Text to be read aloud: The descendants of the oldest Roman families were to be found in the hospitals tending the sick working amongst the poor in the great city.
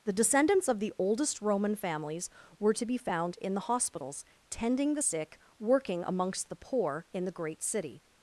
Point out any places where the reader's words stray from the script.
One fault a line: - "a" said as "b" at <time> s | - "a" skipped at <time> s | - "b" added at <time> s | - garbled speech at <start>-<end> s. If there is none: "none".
none